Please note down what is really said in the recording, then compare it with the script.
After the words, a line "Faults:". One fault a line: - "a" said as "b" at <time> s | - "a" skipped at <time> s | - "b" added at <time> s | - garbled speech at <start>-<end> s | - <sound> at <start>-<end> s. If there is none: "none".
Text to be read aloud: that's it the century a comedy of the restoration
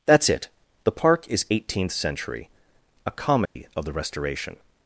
that's it the park is eighteenth century a comedy of the restoration
Faults:
- "park is eighteenth" added at 0.9 s
- dropout at 3.5-3.6 s